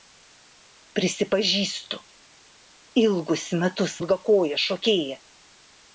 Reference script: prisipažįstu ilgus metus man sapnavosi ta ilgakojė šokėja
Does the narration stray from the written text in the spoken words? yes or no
yes